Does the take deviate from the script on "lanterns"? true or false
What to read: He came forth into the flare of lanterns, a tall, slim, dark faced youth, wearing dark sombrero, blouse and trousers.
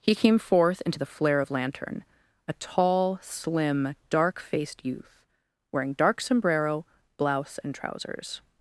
true